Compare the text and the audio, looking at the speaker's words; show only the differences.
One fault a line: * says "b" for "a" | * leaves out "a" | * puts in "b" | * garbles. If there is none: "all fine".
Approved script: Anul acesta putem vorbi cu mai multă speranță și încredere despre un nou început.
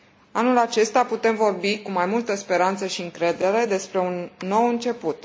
all fine